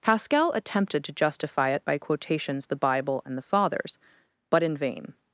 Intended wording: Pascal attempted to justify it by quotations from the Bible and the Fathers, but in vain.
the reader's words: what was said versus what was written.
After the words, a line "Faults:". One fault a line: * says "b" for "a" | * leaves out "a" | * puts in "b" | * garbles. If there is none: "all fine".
Pascal attempted to justify it by quotations the Bible and the Fathers, but in vain.
Faults:
* leaves out "from"